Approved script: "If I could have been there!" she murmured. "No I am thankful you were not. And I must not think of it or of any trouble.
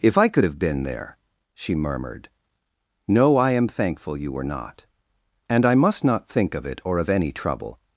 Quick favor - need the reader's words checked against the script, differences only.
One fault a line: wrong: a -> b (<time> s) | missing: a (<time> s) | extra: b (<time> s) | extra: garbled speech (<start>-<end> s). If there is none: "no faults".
no faults